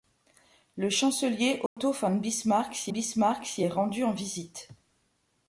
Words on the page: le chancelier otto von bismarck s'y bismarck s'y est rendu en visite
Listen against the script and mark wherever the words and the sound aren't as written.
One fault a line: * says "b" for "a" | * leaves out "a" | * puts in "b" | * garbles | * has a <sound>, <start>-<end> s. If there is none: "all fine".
* has a dropout, 1.7-1.8 s